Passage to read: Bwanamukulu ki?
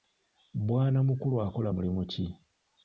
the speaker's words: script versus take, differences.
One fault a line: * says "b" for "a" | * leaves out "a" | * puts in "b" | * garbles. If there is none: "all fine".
* puts in "akola mulimu"